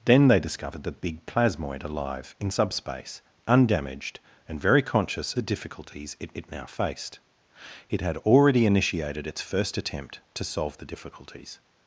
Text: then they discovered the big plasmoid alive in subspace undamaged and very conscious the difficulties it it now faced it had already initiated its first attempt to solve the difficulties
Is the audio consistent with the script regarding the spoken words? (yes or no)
yes